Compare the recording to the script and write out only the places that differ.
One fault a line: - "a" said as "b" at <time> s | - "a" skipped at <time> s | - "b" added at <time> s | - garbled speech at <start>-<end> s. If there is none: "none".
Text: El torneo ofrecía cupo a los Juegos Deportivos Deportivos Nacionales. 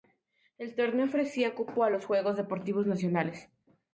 - "Deportivos" skipped at 2.9 s